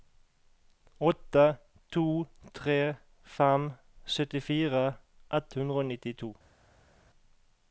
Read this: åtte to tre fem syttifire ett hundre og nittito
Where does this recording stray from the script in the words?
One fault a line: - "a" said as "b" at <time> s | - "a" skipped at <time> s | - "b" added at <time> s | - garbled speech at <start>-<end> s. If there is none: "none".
none